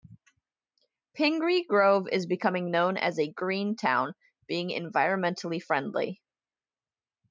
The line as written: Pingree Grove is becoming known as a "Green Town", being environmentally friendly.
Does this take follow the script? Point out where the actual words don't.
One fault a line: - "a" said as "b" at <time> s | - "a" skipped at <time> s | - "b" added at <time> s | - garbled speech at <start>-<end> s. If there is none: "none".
none